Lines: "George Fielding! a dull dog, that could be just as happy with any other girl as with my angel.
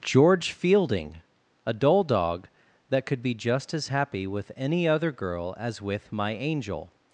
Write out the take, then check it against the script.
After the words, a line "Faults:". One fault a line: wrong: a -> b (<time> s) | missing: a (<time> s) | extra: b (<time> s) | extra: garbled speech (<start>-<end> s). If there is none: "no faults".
"George Fielding! a dull dog, that could be just as happy with any other girl as with my angel.
Faults:
no faults